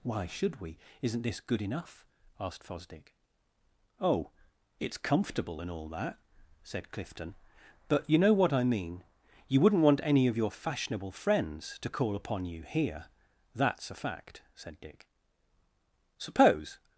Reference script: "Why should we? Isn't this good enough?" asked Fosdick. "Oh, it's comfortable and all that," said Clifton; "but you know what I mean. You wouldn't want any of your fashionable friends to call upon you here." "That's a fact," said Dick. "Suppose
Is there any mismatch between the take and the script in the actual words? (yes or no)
no